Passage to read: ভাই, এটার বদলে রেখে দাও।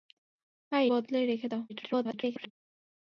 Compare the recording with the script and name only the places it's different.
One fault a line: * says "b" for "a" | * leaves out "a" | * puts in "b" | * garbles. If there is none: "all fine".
* leaves out "এটার"
* garbles